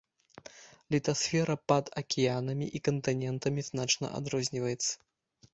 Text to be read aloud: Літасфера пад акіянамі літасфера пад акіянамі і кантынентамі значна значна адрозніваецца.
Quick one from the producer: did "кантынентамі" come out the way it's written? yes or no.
yes